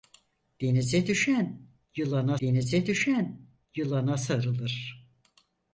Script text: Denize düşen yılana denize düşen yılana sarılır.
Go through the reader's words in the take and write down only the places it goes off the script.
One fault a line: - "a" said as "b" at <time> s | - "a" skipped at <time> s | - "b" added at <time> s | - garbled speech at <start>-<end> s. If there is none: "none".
none